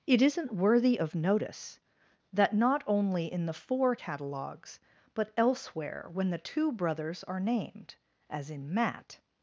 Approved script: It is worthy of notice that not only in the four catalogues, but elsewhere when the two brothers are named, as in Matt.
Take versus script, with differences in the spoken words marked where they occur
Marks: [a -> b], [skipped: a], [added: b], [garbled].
It [is -> isn't] worthy of notice that not only in the four catalogues, but elsewhere when the two brothers are named, as in Matt.